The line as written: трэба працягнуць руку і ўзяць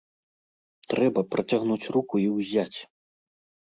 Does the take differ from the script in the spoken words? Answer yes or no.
no